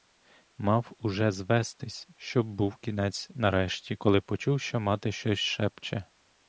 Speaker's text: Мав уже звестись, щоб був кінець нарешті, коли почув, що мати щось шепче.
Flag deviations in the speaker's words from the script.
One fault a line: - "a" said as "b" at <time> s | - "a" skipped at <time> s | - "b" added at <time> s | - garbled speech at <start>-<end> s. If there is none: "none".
none